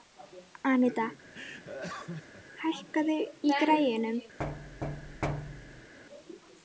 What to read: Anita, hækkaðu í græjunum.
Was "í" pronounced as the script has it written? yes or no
yes